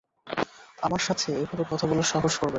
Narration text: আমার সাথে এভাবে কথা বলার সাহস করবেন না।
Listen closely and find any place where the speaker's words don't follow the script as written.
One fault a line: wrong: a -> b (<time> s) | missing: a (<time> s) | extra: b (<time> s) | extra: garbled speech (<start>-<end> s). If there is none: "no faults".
no faults